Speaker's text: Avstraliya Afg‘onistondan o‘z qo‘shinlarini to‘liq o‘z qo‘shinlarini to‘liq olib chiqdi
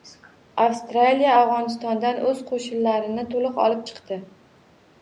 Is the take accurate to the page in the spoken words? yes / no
no